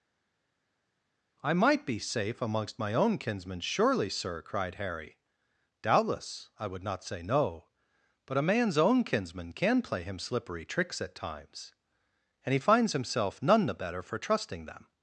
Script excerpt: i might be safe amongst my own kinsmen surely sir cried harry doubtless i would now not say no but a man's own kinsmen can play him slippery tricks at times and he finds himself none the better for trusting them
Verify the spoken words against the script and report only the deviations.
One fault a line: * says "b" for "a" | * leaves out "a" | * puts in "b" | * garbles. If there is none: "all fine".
* leaves out "now"